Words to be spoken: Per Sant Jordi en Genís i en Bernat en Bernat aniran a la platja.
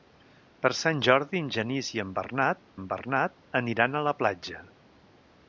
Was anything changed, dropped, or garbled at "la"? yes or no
no